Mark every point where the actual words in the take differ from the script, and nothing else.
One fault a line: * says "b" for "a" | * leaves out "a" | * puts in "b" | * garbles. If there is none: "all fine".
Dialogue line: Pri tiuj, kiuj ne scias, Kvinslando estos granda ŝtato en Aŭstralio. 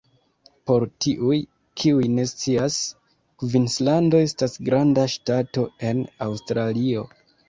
* says "Por" for "Pri"
* says "estas" for "estos"